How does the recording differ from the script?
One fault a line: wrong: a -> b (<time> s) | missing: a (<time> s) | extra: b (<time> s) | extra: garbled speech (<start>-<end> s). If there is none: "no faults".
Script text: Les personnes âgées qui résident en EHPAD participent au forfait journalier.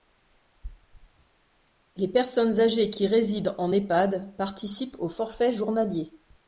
no faults